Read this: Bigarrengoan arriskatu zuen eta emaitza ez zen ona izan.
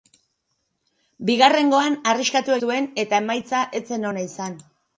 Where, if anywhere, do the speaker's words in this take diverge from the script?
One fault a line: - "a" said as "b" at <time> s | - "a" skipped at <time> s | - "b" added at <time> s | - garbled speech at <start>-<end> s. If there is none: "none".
none